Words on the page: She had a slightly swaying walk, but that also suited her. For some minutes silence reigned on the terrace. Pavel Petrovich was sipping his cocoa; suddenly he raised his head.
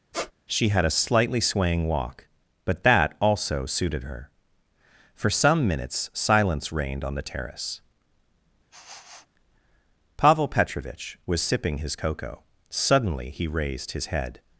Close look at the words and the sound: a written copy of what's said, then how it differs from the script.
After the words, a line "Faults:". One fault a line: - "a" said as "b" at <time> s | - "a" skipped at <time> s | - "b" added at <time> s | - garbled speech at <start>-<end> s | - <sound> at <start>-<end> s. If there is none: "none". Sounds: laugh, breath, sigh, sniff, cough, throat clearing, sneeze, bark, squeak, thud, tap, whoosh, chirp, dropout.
She had a slightly swaying walk, but that also suited her. For some minutes silence reigned on the terrace. Pavel Petrovich was sipping his cocoa; suddenly he raised his head.
Faults:
- squeak at 0.1-0.3 s
- sniff at 8.7-9.3 s